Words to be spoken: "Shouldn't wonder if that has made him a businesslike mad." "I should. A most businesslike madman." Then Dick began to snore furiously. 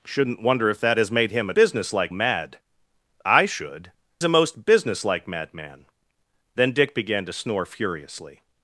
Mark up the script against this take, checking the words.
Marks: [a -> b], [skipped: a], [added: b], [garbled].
"Shouldn't wonder if that has made him a businesslike mad." "I should. A most businesslike madman." Then Dick began to snore furiously.